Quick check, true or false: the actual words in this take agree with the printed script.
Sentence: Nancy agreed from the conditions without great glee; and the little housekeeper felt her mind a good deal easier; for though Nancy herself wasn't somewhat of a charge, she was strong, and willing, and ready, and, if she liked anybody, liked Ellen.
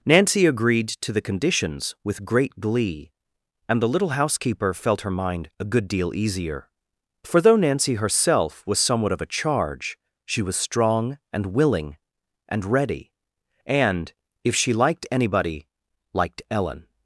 false